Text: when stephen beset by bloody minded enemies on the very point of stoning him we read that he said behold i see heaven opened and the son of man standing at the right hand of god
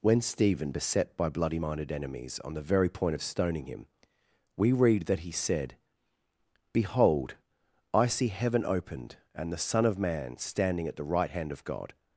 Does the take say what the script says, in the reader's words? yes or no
yes